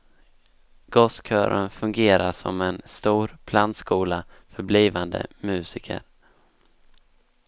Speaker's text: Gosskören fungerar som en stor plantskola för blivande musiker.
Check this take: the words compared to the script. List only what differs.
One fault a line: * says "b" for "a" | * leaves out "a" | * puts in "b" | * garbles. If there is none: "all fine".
all fine